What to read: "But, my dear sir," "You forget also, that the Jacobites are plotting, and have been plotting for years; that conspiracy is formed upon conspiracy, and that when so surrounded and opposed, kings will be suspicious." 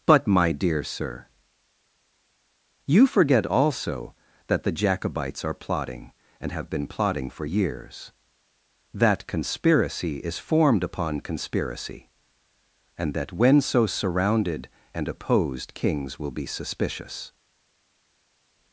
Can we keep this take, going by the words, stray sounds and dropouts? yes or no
yes